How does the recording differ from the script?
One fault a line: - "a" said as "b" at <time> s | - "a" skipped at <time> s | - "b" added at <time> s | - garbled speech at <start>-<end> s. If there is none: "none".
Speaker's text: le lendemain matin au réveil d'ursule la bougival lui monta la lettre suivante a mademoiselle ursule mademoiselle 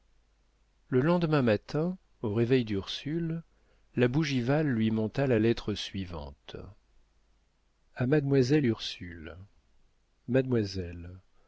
none